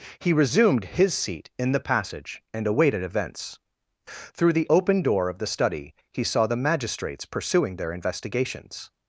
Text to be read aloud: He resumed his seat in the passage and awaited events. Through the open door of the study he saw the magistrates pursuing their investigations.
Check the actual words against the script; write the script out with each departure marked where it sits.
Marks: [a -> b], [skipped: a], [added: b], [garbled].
He resumed his seat in the passage and awaited events. Through the open door of the study he saw the magistrates pursuing their investigations.